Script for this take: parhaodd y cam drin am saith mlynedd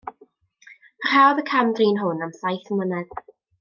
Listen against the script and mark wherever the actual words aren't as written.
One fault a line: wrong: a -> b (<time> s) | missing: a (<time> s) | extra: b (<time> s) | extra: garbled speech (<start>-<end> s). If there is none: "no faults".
extra: hwn (2.1 s)